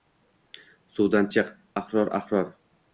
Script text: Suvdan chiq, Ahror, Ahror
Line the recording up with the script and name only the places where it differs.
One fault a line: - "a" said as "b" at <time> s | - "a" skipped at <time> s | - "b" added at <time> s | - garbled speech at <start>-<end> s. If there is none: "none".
none